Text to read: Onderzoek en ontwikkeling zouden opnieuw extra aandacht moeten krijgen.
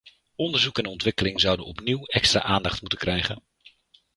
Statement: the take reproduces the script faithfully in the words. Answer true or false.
true